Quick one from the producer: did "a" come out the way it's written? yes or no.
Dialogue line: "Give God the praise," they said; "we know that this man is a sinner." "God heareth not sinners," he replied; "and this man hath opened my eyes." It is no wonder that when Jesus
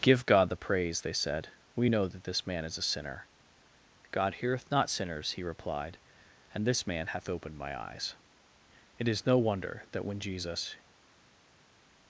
yes